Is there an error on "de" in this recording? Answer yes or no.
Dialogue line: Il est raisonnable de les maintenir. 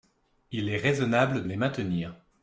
yes